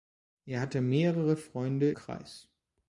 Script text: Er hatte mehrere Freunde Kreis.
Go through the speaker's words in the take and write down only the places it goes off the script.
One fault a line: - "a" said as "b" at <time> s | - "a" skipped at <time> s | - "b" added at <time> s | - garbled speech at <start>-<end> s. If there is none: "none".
none